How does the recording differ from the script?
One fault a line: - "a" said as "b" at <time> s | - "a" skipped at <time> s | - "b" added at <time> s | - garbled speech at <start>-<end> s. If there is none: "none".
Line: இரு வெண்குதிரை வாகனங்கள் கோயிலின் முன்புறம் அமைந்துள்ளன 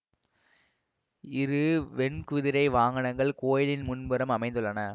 none